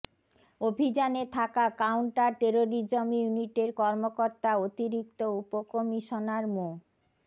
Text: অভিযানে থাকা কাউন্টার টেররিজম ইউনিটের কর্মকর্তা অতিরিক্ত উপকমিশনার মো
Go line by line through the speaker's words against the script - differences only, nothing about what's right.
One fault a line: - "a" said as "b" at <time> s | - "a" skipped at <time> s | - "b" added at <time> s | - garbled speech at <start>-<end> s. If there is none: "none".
none